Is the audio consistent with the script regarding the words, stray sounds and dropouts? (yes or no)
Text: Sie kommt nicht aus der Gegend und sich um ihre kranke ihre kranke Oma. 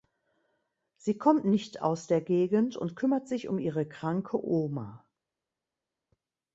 no